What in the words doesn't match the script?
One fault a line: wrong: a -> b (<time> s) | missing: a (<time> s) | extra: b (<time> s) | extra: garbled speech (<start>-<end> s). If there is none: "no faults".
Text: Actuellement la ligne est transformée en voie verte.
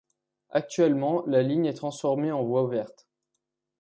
no faults